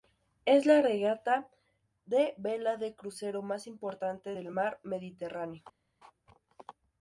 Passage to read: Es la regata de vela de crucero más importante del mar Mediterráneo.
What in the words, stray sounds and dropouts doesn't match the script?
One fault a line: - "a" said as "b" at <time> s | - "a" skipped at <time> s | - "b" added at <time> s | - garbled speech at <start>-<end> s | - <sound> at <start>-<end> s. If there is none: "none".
none